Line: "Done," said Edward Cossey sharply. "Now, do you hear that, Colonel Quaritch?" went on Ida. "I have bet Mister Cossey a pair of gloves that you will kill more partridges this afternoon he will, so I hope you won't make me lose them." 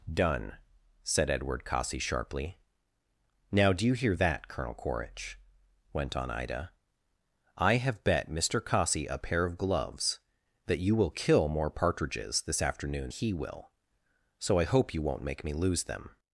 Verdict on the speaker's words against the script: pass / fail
pass